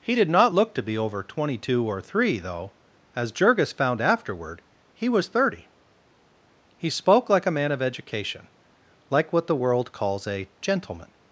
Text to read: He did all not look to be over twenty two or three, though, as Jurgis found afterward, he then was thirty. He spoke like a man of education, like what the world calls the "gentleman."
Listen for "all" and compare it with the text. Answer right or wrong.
wrong